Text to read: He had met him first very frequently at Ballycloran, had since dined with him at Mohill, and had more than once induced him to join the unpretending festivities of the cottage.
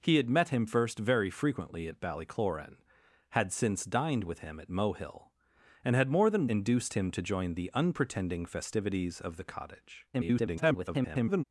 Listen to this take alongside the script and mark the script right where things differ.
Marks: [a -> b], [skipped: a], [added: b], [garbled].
He had met him first very frequently at Ballycloran, had since dined with him at Mohill, and had more than [skipped: once] induced him to join the unpretending festivities of the cottage. [garbled]